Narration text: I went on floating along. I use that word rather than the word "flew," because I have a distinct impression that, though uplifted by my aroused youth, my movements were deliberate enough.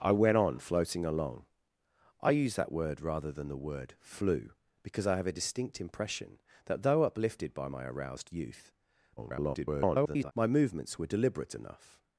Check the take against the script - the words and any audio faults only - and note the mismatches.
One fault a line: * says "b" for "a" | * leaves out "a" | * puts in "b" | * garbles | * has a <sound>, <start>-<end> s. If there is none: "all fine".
* garbles